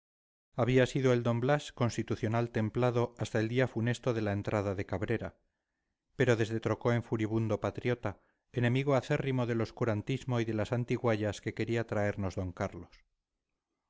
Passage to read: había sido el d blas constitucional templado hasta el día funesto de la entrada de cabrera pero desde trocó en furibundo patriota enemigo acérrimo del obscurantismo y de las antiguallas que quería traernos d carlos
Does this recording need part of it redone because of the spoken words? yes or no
no